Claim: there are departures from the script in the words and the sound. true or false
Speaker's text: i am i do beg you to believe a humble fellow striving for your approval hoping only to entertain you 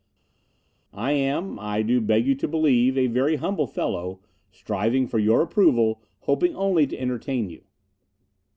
true